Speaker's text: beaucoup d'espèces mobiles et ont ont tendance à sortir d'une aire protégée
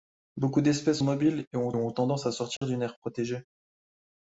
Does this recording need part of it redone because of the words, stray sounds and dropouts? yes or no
yes